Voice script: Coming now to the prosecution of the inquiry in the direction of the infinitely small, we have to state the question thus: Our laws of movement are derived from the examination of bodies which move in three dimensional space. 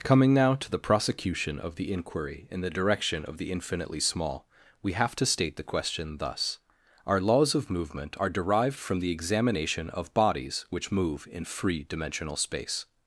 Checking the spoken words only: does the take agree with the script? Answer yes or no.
no